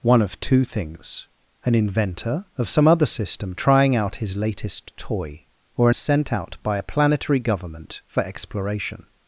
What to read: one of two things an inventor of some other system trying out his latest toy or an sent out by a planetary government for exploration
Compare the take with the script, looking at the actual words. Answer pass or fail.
pass